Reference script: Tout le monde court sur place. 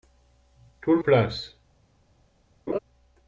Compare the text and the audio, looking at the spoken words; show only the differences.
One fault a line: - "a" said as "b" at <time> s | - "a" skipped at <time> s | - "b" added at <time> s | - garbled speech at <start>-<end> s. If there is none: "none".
- "monde court sur" skipped at 1.0 s